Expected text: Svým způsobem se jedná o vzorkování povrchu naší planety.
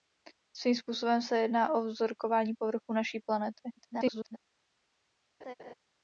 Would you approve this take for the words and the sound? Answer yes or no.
no